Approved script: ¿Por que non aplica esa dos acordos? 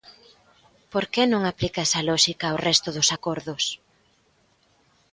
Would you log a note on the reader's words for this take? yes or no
yes